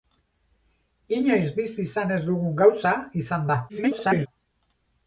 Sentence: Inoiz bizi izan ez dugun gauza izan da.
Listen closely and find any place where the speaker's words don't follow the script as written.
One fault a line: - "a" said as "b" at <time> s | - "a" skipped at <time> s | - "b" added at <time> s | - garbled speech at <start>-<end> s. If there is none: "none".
- garbled speech at 3.7-4.3 s